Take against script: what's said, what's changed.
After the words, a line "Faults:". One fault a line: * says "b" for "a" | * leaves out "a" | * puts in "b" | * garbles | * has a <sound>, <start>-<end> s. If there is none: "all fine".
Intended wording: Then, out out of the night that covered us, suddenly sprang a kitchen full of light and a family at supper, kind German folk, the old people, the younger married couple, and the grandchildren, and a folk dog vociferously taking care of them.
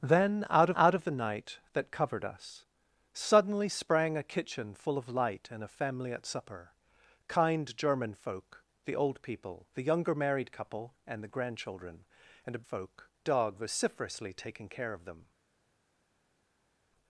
Then, out out of the night that covered us, suddenly sprang a kitchen full of light and a family at supper, kind German folk, the old people, the younger married couple, and the grandchildren, and a folk dog vociferously taking care of them.
Faults:
all fine